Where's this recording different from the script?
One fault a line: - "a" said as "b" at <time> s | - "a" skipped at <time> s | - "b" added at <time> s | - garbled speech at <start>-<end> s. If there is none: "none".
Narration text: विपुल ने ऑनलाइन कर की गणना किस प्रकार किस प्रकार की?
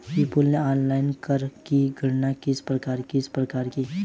none